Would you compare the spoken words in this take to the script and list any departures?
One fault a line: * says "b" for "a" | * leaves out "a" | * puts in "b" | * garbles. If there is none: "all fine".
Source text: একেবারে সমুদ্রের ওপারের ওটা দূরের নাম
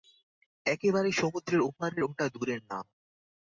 all fine